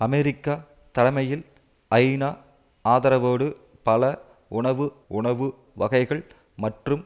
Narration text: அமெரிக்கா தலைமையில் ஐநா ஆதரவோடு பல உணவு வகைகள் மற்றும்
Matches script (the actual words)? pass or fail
fail